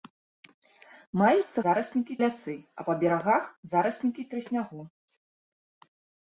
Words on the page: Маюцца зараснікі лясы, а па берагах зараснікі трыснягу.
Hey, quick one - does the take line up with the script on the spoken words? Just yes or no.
yes